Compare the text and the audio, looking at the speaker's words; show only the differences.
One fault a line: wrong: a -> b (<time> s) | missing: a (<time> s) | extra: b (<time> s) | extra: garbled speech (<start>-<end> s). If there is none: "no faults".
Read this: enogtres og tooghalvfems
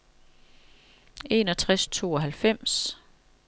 no faults